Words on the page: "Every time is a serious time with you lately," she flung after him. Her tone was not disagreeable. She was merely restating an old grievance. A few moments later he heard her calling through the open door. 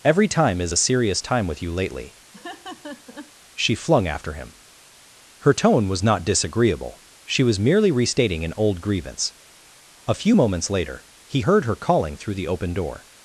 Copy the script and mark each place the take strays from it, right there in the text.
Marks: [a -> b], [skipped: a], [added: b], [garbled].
"Every time is a serious time with you lately," she flung after him. Her tone was not disagreeable. She was merely restating an old grievance. A few moments later he heard her calling through the open door.